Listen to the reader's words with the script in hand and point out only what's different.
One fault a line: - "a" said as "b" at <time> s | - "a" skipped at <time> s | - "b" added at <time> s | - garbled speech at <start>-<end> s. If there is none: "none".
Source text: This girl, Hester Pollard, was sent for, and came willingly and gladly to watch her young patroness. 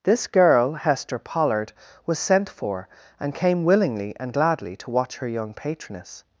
none